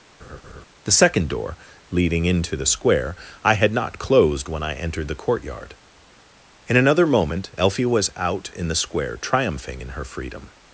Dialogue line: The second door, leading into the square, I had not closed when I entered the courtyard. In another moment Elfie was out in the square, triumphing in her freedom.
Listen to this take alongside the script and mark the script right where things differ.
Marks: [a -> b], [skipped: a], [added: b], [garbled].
The second door, leading into the square, I had not closed when I entered the courtyard. In another moment Elfie was out in the square, triumphing in her freedom.